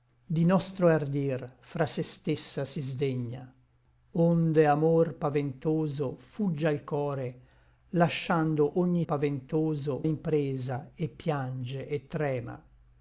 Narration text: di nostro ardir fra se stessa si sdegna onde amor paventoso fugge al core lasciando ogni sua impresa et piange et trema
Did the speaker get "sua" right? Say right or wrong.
wrong